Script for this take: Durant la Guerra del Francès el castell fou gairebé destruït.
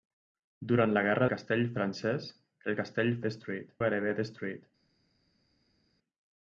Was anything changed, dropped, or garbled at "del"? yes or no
yes